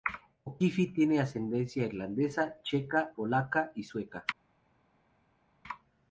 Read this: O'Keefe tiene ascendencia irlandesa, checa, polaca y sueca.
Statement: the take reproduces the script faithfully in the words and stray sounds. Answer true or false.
true